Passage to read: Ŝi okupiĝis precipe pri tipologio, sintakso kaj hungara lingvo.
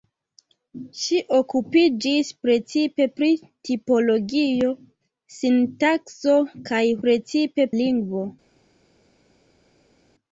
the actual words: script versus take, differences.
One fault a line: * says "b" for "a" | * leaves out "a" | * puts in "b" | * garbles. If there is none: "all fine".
* says "precipe" for "hungara"